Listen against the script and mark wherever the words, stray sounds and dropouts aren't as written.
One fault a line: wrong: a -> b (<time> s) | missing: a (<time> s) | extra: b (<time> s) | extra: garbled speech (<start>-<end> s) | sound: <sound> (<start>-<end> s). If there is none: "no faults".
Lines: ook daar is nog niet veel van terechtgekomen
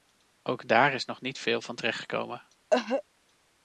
sound: cough (2.7-3.0 s)